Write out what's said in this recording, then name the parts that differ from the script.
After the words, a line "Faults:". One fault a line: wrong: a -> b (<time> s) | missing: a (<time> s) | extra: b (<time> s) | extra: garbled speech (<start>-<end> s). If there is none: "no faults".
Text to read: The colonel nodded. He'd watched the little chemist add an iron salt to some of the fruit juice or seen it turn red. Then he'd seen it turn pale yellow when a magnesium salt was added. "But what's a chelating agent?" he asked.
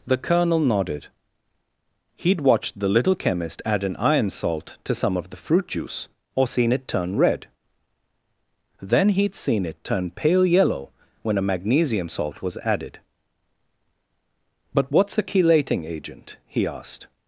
The colonel nodded. He'd watched the little chemist add an iron salt to some of the fruit juice or seen it turn red. Then he'd seen it turn pale yellow when a magnesium salt was added. "But what's a chelating agent?" he asked.
Faults:
no faults